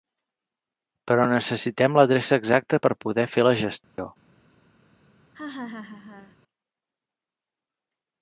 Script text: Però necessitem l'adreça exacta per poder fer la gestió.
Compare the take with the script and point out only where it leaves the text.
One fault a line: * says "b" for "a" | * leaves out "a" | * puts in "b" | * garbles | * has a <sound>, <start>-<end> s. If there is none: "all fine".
* has a dropout, 3.8-4.0 s
* has a laugh, 5.3-6.4 s